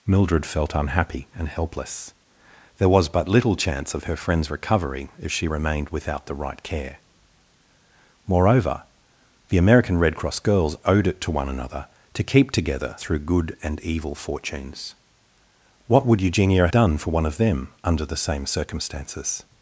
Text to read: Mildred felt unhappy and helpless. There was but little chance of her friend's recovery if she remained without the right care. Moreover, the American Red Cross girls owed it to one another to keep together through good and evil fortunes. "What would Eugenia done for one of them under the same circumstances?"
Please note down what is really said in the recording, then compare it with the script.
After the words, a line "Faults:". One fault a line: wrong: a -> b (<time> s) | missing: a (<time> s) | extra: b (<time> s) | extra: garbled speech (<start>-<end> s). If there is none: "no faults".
Mildred felt unhappy and helpless. There was but little chance of her friend's recovery if she remained without the right care. Moreover, the American Red Cross girls owed it to one another to keep together through good and evil fortunes. "What would Eugenia done for one of them under the same circumstances?"
Faults:
no faults